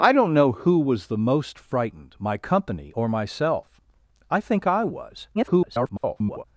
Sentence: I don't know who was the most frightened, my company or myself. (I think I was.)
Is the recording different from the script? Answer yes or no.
yes